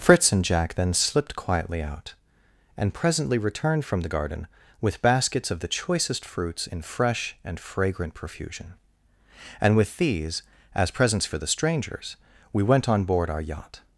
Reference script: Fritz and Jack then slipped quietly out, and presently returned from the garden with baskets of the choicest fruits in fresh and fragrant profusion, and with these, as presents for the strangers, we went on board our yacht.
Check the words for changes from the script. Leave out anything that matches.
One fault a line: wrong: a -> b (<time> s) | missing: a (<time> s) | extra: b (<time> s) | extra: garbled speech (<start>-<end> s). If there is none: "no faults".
no faults